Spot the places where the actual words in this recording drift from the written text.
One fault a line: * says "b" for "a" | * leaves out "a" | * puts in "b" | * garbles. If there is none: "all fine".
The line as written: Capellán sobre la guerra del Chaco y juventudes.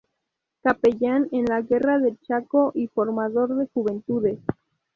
* says "en" for "sobre"
* puts in "formador de"